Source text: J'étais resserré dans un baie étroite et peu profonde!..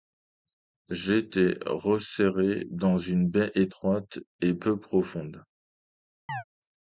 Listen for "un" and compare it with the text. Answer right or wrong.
wrong